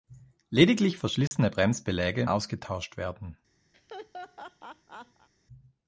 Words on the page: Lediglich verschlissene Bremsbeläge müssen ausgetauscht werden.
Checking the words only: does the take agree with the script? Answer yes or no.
no